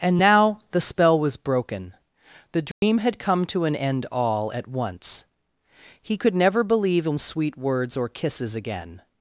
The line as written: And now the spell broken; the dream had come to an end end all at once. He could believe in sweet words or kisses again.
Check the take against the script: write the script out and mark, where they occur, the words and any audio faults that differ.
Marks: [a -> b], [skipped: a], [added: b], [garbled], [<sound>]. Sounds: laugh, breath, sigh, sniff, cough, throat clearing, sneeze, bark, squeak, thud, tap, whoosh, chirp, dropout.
And now the spell [added: was] broken; the dream [dropout] had come to an end [skipped: end] all at once. He could [added: never] believe in sweet words or kisses again.